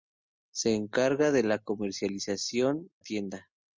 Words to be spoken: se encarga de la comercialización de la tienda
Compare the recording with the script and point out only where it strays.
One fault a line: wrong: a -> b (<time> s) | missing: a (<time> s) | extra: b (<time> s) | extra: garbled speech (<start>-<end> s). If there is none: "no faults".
missing: de la (2.9 s)